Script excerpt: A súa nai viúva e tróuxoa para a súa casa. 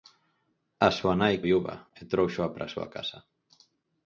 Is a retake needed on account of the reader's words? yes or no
no